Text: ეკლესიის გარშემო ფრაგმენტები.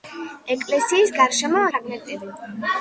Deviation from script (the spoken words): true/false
false